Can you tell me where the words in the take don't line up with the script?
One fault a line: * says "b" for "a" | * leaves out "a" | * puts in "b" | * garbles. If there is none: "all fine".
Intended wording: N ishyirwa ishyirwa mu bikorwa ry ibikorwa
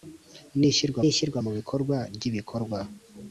all fine